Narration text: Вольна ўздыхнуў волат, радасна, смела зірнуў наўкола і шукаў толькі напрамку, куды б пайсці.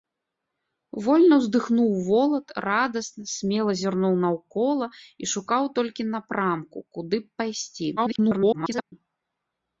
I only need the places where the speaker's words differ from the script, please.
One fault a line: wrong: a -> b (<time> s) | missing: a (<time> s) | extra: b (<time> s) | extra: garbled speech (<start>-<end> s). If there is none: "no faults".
extra: garbled speech (8.0-8.9 s)